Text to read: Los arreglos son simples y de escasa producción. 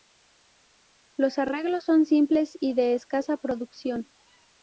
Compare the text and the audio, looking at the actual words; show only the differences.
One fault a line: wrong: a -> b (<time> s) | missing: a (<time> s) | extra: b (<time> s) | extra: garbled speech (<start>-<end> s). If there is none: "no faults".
no faults